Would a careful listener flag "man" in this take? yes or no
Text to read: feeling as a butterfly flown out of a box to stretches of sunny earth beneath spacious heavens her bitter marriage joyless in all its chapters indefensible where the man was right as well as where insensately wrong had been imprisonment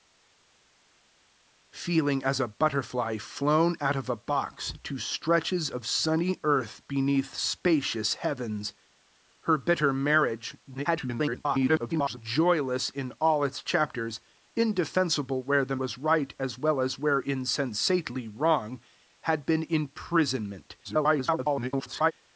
yes